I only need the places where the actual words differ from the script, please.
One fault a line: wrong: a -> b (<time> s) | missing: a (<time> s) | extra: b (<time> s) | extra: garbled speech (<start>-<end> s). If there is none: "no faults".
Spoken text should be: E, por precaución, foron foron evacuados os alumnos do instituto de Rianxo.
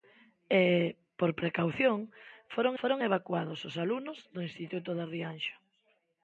no faults